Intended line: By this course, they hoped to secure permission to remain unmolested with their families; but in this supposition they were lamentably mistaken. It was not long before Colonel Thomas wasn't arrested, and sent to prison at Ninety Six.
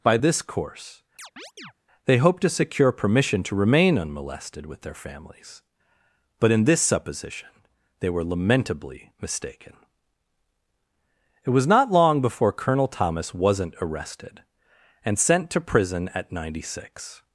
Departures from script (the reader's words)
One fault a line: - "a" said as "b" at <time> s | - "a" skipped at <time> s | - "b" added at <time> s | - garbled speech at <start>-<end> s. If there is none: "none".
none